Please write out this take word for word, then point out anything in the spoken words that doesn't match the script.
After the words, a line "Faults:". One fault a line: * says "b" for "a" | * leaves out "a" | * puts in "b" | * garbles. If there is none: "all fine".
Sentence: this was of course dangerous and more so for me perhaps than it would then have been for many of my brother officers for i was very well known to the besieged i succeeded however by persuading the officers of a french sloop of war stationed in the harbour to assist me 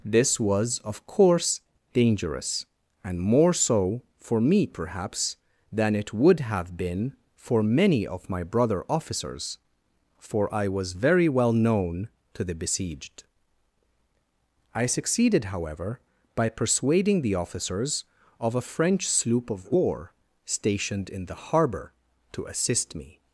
this was of course dangerous and more so for me perhaps than it would have been for many of my brother officers for i was very well known to the besieged i succeeded however by persuading the officers of a french sloop of war stationed in the harbour to assist me
Faults:
* leaves out "then"